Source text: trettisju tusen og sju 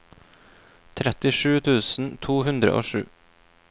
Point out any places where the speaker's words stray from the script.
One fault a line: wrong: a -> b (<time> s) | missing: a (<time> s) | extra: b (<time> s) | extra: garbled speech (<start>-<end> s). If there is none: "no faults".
extra: to hundre (2.3 s)